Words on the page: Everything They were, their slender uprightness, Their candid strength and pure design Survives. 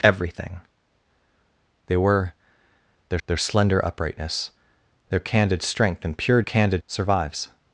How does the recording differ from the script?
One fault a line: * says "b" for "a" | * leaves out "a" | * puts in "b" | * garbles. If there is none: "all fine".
* puts in "their"
* says "candid" for "design"